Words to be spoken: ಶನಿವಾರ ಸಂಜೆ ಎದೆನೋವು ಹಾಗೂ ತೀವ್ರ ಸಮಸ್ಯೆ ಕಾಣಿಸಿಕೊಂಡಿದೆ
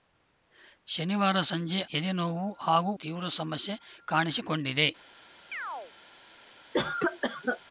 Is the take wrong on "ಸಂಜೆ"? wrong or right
right